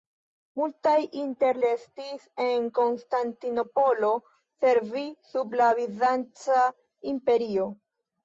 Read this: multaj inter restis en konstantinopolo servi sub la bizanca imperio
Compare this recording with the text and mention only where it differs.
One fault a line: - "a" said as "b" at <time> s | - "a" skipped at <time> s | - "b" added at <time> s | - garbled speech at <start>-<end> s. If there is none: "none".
none